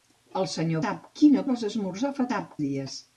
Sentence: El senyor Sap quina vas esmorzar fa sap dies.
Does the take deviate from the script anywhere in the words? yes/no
no